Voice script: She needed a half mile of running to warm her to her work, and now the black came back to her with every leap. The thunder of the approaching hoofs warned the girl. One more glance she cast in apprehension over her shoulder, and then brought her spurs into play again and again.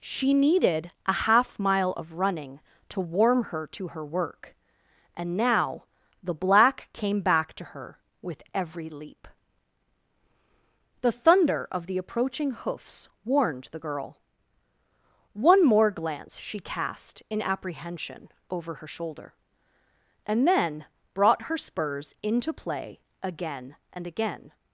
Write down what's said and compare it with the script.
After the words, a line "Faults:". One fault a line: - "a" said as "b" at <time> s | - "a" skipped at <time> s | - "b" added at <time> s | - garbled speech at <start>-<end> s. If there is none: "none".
She needed a half mile of running to warm her to her work, and now the black came back to her with every leap. The thunder of the approaching hoofs warned the girl. One more glance she cast in apprehension over her shoulder, and then brought her spurs into play again and again.
Faults:
none